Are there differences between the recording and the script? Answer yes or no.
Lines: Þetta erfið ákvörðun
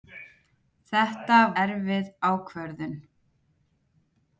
no